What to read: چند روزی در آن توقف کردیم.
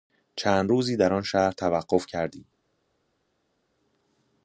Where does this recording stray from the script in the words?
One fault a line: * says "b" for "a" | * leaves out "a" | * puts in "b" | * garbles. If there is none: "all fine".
* puts in "شهر"